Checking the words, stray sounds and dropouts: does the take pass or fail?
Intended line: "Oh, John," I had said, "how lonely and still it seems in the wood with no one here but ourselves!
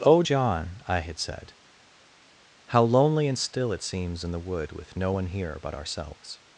pass